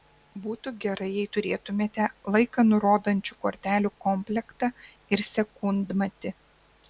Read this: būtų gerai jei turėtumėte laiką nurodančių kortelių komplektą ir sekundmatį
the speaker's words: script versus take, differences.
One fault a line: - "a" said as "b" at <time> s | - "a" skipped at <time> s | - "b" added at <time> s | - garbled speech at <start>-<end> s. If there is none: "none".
none